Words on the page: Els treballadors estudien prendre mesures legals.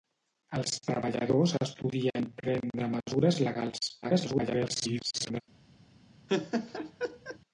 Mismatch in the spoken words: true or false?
true